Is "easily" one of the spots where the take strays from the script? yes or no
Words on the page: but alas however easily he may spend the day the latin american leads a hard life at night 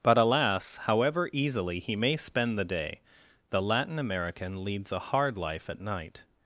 no